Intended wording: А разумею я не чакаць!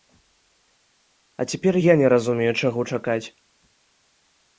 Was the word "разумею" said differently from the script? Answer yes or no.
yes